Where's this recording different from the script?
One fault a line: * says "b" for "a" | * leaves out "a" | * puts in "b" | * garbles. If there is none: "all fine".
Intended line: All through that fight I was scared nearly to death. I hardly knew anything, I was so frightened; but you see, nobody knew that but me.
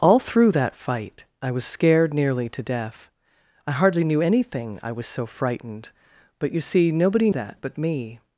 * leaves out "knew"